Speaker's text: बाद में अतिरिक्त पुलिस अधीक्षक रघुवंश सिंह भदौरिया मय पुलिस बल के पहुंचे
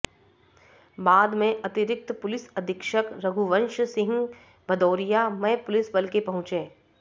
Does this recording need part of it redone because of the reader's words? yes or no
no